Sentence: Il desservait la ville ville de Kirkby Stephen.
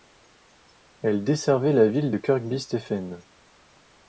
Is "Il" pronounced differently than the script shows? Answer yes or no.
yes